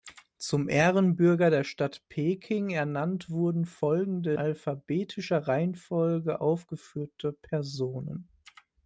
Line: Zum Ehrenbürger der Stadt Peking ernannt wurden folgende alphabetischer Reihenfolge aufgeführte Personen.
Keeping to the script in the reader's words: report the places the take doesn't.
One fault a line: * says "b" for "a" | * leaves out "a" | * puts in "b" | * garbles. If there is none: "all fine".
all fine